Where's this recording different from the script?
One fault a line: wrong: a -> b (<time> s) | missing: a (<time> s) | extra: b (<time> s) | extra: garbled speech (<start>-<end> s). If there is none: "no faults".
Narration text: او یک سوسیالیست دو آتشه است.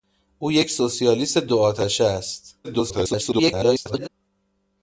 extra: garbled speech (2.6-4.1 s)